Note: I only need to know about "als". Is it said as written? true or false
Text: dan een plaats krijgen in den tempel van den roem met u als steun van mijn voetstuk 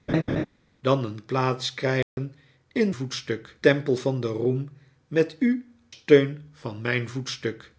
false